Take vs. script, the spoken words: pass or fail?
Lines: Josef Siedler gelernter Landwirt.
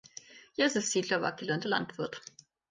fail